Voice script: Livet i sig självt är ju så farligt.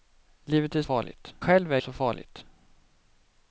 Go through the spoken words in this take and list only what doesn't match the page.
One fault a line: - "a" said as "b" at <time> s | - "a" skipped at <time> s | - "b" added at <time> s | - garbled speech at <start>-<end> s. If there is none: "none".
- "sig" said as "farligt" at 0.8 s
- "ju" skipped at 1.8 s